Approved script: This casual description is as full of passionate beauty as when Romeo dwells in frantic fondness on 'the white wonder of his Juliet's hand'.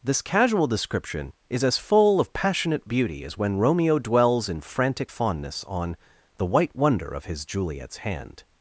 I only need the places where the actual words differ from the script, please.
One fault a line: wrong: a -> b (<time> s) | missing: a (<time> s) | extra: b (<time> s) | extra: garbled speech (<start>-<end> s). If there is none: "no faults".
no faults